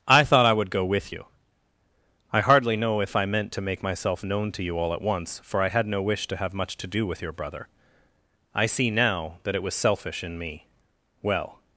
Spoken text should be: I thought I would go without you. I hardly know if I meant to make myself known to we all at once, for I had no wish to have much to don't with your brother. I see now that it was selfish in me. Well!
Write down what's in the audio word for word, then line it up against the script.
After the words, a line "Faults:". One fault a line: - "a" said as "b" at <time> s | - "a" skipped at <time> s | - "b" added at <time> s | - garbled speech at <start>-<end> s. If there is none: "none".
I thought I would go with you. I hardly know if I meant to make myself known to you all at once, for I had no wish to have much to do with your brother. I see now that it was selfish in me. Well!
Faults:
- "without" said as "with" at 0.8 s
- "we" said as "you" at 4.6 s
- "don't" said as "do" at 6.9 s